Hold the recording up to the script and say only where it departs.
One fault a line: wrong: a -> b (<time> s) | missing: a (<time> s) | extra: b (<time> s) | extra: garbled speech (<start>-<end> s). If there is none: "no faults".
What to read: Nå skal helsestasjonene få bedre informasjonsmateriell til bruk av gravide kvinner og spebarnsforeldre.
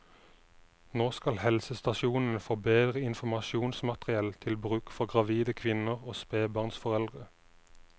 wrong: av -> for (5.0 s)